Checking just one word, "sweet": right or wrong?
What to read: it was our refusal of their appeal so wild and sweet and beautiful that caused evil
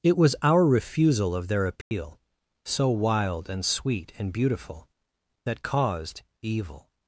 right